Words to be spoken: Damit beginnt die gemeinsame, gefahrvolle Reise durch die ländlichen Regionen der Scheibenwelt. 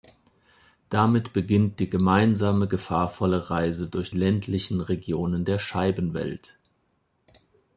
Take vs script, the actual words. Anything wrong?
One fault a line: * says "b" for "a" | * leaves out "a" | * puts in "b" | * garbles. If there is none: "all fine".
* leaves out "die"